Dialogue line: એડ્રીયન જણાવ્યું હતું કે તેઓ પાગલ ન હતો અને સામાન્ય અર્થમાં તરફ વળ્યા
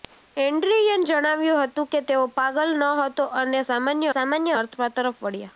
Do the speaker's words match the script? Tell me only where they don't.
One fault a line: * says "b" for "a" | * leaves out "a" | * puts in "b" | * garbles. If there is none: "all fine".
* puts in "સામાન્ય"